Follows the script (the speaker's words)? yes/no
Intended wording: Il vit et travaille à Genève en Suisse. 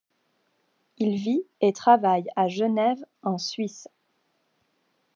yes